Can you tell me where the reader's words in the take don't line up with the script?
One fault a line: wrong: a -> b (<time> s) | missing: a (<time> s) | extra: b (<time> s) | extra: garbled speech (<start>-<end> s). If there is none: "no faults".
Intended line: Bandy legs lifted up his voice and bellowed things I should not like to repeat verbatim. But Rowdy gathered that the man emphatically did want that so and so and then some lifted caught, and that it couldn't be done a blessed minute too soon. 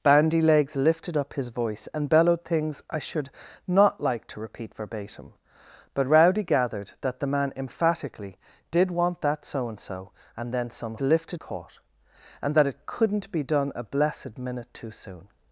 no faults